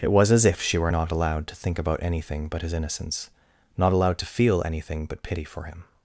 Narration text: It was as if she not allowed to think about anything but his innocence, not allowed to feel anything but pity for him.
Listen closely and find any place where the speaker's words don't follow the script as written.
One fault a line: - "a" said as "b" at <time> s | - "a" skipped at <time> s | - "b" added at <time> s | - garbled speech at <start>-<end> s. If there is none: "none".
- "were" added at 0.8 s